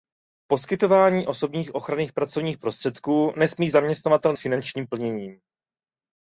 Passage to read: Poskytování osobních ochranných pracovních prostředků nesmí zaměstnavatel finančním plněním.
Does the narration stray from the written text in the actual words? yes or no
no